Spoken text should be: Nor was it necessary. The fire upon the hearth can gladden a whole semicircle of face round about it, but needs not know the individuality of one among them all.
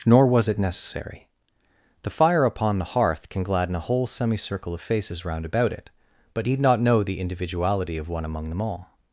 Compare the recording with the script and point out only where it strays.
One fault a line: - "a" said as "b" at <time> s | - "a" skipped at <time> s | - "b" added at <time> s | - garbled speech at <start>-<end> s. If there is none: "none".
- "face" said as "faces" at 4.8 s
- "needs" said as "need" at 6.4 s